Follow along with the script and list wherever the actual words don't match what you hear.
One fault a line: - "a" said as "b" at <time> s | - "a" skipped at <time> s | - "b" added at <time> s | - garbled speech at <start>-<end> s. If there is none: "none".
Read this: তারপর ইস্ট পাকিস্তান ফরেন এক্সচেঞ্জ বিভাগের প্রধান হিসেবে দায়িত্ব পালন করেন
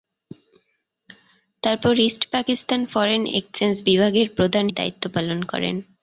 - "হিসেবে" skipped at 4.7 s